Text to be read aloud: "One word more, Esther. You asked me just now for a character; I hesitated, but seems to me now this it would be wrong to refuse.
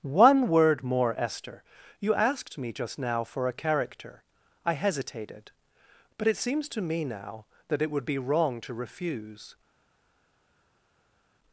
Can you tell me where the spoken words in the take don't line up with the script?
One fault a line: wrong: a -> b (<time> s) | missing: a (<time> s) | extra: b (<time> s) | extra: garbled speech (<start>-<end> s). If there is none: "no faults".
extra: it (6.3 s)
wrong: this -> that (7.7 s)